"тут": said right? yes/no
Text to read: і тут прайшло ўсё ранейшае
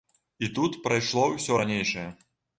yes